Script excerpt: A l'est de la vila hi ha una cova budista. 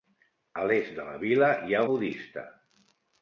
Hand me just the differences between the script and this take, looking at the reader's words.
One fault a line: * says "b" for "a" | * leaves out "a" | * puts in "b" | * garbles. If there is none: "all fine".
* leaves out "una cova"